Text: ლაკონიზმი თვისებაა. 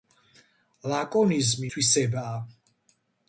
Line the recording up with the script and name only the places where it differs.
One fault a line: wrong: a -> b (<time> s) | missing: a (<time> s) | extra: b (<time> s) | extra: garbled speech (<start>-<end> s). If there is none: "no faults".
no faults